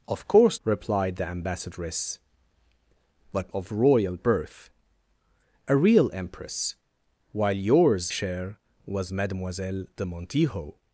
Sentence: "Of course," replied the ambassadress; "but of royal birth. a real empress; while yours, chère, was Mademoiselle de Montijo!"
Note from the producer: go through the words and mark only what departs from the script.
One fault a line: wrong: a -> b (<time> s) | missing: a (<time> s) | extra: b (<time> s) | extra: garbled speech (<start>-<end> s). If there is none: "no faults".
no faults